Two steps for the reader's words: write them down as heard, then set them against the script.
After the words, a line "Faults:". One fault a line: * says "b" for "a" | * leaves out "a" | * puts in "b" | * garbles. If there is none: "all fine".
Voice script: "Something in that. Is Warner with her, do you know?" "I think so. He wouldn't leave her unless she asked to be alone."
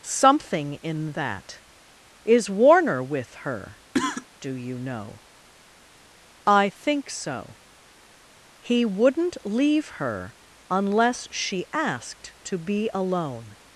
"Something in that. Is Warner with her, do you know?" "I think so. He wouldn't leave her unless she asked to be alone."
Faults:
all fine